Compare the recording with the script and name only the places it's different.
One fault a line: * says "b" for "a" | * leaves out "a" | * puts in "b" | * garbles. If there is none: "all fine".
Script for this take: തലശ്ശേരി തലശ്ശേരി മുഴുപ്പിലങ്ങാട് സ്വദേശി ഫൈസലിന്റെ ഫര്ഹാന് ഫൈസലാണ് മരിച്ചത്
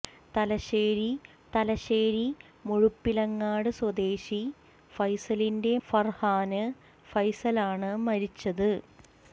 all fine